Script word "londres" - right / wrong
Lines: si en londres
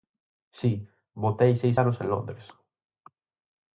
right